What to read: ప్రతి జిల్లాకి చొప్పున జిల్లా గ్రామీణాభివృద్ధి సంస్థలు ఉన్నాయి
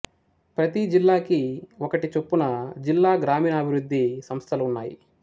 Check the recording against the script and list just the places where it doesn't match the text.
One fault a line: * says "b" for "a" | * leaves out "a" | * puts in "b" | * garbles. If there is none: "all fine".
* puts in "ఒకటి"